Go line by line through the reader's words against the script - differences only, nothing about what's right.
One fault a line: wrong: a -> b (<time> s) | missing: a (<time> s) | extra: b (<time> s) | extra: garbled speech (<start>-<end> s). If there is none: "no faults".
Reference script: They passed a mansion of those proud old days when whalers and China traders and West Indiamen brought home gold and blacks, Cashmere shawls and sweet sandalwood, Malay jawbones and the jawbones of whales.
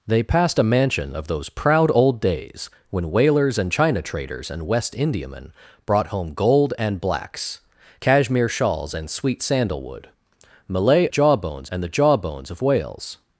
no faults